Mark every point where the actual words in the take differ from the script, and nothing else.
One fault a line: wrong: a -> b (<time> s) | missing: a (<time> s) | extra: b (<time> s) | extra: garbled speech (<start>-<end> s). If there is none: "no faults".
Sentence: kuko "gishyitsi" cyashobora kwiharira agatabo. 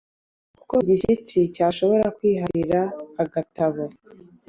no faults